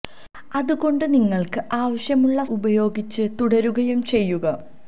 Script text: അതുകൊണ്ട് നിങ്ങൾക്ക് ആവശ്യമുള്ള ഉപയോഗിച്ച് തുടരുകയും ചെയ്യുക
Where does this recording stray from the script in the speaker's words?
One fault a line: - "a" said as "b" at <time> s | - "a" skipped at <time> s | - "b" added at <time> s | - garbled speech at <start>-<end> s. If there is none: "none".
none